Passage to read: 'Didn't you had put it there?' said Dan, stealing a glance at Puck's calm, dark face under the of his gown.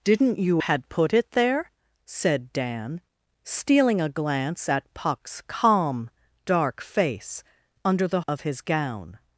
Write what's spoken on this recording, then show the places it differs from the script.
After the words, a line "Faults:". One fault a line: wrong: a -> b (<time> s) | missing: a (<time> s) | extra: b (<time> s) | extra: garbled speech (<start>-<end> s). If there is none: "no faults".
'Didn't you had put it there?' said Dan, stealing a glance at Puck's calm, dark face under the of his gown.
Faults:
no faults